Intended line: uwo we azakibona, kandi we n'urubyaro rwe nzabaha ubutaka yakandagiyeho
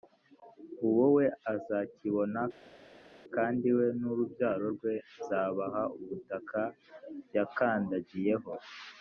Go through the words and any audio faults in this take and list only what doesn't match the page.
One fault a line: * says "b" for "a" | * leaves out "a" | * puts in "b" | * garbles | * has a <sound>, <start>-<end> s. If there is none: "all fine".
all fine